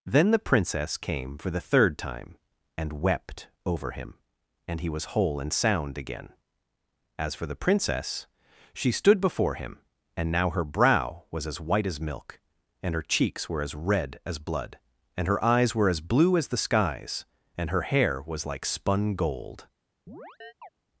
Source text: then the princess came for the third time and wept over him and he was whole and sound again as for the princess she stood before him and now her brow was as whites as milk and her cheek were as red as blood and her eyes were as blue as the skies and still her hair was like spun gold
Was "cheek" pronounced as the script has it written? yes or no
no